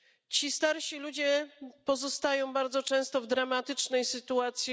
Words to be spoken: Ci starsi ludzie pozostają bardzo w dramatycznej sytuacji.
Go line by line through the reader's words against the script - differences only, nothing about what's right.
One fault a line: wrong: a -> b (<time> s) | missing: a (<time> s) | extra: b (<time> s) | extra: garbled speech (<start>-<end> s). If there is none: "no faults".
extra: często (2.8 s)